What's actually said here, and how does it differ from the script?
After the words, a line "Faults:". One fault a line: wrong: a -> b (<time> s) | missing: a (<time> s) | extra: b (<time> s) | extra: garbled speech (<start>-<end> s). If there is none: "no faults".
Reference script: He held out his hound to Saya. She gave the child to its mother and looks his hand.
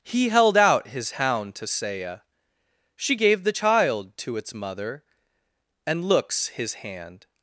He held out his hound to Saya. She gave the child to its mother and looks his hand.
Faults:
no faults